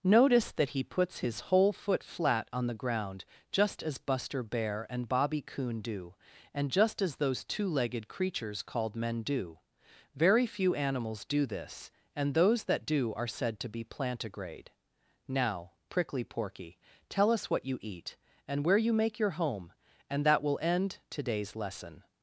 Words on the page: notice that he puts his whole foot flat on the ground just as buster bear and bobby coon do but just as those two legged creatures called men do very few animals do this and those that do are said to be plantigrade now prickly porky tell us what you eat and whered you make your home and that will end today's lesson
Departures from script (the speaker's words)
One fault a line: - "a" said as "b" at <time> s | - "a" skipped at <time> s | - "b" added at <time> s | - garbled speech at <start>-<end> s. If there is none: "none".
- "but" said as "and" at 6.5 s
- "whered" said as "where" at 18.6 s